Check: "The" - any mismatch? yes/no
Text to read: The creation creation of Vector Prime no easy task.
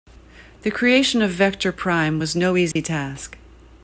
no